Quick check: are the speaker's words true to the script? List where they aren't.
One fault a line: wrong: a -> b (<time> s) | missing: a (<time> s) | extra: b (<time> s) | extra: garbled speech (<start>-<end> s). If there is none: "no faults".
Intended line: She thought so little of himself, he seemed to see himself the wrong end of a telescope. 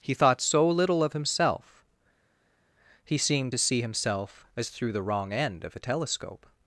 wrong: She -> He (0.0 s)
extra: as through (4.5 s)